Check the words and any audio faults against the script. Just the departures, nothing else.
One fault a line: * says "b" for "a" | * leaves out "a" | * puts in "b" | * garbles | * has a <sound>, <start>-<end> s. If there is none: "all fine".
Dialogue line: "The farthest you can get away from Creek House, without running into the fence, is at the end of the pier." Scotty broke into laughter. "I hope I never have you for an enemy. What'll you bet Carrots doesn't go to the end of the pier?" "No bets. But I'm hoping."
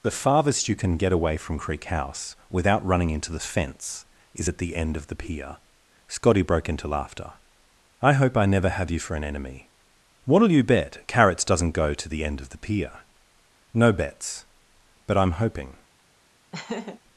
* has a laugh, 16.5-17.0 s